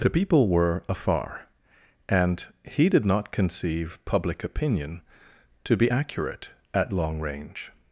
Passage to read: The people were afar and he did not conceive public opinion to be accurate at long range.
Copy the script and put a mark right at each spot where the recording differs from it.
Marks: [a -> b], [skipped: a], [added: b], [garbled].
The people were afar and he did not conceive public opinion to be accurate at long range.